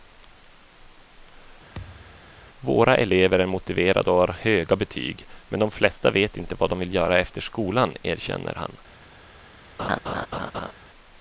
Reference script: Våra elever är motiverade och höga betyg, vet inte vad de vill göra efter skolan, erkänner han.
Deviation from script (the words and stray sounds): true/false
true